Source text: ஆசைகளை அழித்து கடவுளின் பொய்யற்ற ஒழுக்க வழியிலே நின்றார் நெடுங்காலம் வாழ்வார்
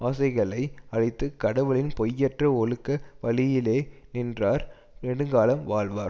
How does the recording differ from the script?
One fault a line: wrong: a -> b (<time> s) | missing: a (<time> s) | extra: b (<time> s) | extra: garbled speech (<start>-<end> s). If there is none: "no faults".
no faults